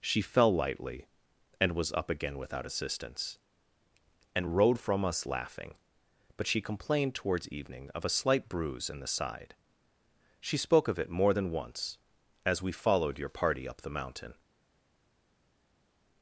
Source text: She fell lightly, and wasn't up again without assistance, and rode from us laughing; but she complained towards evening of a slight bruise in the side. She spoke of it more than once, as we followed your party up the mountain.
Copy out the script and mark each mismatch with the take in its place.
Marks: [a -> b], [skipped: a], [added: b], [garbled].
She fell lightly, and [wasn't -> was] up again without assistance, and rode from us laughing; but she complained towards evening of a slight bruise in the side. She spoke of it more than once, as we followed your party up the mountain.